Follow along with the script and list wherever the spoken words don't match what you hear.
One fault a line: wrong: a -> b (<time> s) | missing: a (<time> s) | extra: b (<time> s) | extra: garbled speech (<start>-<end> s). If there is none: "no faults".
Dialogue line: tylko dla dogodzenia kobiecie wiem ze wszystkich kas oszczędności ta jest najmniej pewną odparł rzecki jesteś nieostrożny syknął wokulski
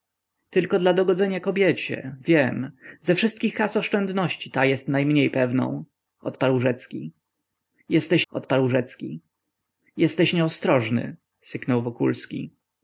extra: odparł rzecki jesteś (8.3 s)